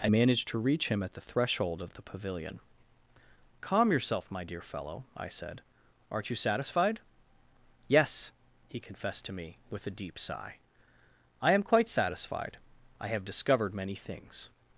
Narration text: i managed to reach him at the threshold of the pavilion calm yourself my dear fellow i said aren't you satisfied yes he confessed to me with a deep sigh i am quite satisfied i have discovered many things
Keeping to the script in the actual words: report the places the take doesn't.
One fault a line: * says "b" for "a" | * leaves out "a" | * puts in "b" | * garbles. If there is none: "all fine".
all fine